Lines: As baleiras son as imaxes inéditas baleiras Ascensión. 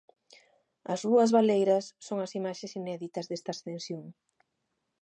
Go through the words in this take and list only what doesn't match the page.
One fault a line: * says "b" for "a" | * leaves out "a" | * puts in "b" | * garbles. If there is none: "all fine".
* puts in "rúas"
* says "desta" for "baleiras"